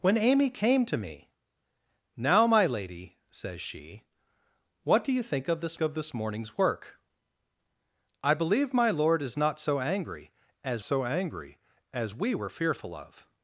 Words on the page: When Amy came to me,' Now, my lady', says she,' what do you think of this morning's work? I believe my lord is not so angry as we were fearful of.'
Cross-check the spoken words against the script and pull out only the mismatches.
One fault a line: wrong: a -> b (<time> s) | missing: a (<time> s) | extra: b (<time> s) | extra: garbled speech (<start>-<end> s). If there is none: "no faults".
extra: of this (5.8 s)
extra: so angry as (10.8 s)